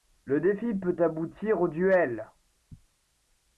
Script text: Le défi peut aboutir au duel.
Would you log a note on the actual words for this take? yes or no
no